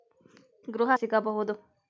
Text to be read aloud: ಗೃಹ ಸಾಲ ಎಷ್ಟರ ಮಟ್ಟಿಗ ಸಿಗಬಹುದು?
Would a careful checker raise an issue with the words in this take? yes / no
yes